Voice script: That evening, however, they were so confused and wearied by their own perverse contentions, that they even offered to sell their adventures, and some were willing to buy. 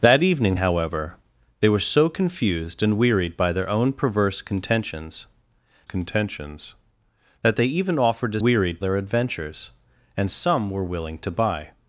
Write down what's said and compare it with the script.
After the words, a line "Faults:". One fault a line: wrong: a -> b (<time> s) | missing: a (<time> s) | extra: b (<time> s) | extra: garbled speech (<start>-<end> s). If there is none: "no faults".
That evening, however, they were so confused and wearied by their own perverse contentions contentions, that they even offered to wearied their adventures, and some were willing to buy.
Faults:
extra: contentions (5.8 s)
wrong: sell -> wearied (8.4 s)